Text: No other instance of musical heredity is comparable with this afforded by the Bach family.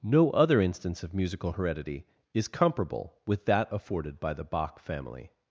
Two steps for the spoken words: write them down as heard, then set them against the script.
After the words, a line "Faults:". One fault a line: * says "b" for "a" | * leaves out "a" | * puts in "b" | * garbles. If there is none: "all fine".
No other instance of musical heredity is comparable with that afforded by the Bach family.
Faults:
* says "that" for "this"